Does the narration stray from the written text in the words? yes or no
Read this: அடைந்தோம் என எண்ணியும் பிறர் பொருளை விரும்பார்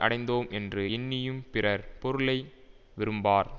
yes